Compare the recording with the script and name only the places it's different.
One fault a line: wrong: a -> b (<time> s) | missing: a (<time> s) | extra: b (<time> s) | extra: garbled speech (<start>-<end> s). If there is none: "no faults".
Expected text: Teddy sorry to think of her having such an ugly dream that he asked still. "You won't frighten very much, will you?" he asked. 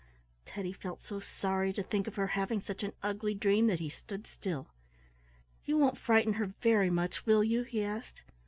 extra: felt so (0.7 s)
wrong: asked -> stood (3.9 s)
extra: her (6.4 s)